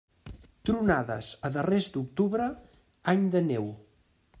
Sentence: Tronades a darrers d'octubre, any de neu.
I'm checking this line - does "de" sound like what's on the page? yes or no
yes